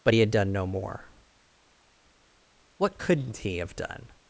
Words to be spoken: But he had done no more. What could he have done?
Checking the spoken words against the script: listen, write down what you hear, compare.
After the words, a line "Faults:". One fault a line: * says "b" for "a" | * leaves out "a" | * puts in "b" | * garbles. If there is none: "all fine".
But he had done no more. What couldn't he have done?
Faults:
* says "couldn't" for "could"